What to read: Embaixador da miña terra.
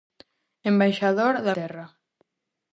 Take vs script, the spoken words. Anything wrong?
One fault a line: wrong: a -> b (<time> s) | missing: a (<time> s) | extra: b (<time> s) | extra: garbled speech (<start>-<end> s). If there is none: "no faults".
missing: miña (1.5 s)